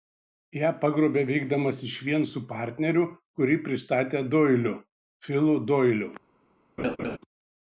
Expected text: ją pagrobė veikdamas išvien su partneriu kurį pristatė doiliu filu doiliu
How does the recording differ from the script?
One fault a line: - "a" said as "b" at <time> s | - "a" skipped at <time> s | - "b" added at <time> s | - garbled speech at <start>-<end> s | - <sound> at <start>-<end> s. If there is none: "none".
- laugh at 6.8-7.2 s